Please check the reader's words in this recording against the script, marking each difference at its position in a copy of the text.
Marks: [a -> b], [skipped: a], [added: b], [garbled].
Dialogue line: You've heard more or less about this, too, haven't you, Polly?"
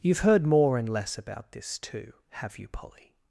You've heard more [or -> and] less about this, too, [haven't -> have] you, Polly?"